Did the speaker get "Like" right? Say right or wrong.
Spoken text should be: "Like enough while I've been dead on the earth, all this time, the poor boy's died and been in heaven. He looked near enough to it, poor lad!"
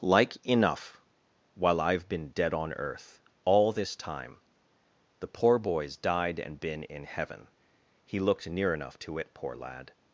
right